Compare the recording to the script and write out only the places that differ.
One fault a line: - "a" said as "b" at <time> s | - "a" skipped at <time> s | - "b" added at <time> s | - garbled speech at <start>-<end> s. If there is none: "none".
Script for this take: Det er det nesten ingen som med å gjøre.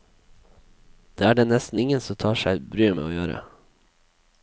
- "tar seg bryet" added at 2.2 s